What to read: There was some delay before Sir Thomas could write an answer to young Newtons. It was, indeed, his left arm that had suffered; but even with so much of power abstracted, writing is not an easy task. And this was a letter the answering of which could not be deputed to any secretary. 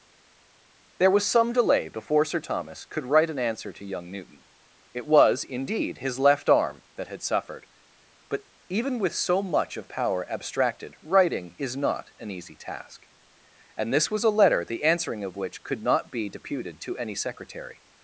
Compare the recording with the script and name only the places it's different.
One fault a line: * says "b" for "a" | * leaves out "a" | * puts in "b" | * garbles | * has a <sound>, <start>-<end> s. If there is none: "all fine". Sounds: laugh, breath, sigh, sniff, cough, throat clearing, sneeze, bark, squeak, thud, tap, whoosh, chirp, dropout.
* says "Newton" for "Newtons"